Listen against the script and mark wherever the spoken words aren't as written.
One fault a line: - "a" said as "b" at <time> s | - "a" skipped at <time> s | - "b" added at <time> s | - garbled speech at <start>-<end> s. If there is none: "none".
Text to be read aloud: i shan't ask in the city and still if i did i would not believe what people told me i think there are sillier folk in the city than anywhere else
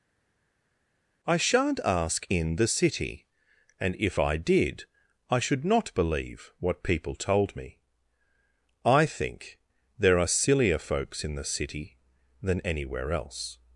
- "still" skipped at 3.9 s
- "would" said as "should" at 5.4 s
- "folk" said as "folks" at 10.8 s